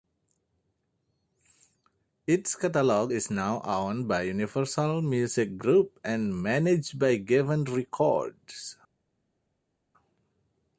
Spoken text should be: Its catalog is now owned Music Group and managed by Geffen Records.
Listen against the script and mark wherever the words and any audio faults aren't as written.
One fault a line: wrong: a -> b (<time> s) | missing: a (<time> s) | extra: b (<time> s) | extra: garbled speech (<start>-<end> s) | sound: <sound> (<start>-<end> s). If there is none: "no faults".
extra: by Universal (4.1 s)